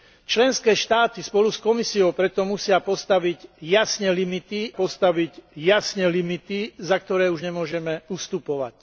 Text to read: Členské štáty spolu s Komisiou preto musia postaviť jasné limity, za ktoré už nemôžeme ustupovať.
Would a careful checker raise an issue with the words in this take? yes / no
yes